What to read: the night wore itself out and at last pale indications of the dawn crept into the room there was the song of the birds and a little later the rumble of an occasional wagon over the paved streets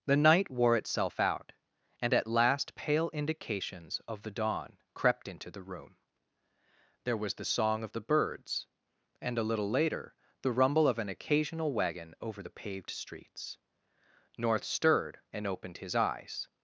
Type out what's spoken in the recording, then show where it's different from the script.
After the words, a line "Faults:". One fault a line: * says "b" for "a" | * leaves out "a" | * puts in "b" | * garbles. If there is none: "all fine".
the night wore itself out and at last pale indications of the dawn crept into the room there was the song of the birds and a little later the rumble of an occasional wagon over the paved streets north stirred and opened his eyes
Faults:
* puts in "north stirred and opened his eyes"